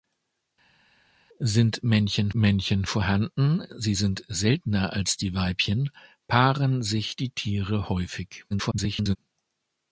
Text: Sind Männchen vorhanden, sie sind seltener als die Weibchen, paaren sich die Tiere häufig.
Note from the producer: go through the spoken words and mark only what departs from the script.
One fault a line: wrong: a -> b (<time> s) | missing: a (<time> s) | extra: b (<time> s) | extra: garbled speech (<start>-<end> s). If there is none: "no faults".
extra: Männchen (2.3 s)
extra: garbled speech (8.5-9.2 s)